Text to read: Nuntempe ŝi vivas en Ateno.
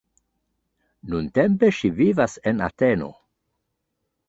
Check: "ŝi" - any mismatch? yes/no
no